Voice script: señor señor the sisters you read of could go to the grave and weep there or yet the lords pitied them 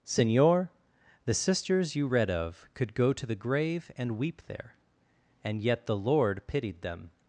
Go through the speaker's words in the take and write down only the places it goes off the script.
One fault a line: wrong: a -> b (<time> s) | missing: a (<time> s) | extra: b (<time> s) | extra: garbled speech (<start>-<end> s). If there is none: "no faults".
missing: señor (0.7 s)
wrong: or -> and (5.4 s)
wrong: lords -> lord (6.0 s)